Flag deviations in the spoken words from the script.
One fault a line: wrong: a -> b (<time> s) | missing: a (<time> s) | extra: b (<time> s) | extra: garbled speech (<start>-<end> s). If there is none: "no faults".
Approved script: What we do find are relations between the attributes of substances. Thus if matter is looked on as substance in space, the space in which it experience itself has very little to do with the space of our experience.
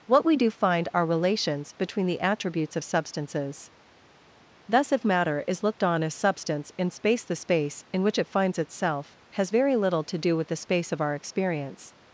wrong: experience -> finds (8.3 s)